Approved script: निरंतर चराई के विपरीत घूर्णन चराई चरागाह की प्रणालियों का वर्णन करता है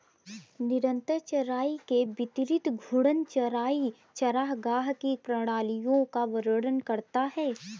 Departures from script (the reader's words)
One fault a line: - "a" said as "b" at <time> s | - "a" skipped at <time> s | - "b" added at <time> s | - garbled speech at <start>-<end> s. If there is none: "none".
none